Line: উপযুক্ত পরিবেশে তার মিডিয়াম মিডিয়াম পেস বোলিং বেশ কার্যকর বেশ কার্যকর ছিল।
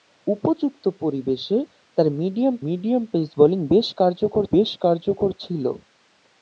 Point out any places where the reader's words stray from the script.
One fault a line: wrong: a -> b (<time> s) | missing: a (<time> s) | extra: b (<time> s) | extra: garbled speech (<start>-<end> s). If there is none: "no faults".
no faults